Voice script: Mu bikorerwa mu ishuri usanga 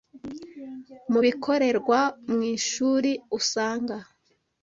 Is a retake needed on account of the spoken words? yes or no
no